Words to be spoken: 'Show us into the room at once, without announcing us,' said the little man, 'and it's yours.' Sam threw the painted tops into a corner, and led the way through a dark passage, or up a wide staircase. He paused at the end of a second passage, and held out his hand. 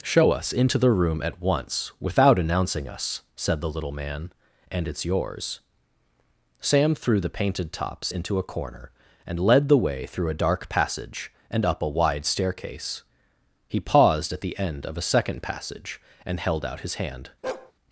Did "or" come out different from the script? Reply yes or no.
yes